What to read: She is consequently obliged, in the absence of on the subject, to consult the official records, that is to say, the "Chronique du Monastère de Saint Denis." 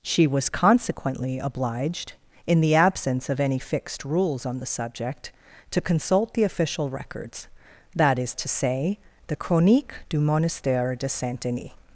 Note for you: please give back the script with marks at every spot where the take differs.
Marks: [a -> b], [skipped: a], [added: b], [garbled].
She [is -> was] consequently obliged, in the absence of [added: any fixed rules] on the subject, to consult the official records, that is to say, the "Chronique du Monastère de Saint Denis."